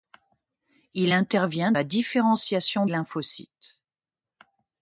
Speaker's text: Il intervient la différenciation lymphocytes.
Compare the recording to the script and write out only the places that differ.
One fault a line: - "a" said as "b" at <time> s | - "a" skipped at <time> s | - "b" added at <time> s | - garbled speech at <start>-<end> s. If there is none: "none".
none